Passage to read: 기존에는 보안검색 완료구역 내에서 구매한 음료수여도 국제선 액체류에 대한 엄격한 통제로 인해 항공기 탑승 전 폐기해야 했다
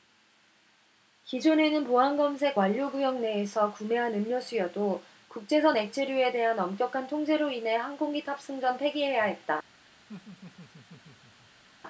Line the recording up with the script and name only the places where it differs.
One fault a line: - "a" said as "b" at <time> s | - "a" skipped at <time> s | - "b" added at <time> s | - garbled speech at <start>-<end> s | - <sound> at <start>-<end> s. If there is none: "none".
- laugh at 10.1-11.6 s